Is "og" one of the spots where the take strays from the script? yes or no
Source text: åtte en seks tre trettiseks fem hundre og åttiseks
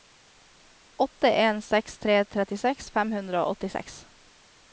no